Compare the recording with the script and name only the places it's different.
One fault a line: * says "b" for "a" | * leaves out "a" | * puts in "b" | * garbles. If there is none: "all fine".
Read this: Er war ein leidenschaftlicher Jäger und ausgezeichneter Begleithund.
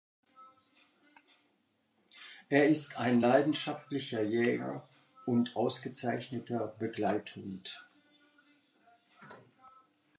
* says "ist" for "war"